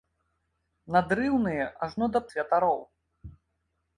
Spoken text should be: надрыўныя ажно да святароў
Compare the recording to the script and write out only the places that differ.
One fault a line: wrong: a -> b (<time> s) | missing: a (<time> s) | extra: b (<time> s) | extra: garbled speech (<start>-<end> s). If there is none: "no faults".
no faults